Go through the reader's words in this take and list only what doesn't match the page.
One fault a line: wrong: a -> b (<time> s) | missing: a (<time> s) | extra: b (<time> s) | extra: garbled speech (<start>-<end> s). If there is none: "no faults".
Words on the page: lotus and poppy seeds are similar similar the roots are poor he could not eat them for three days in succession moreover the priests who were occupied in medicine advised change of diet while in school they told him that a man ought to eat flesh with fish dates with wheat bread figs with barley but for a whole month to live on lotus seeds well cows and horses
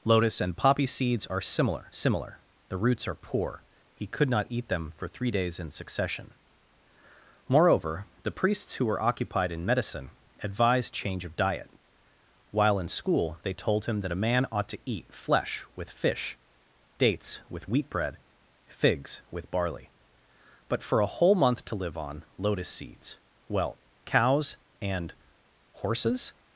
no faults